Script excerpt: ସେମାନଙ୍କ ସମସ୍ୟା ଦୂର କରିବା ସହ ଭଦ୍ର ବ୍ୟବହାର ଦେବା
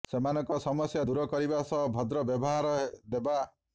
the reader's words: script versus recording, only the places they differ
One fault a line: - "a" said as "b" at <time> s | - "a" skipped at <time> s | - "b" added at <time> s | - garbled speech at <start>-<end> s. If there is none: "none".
none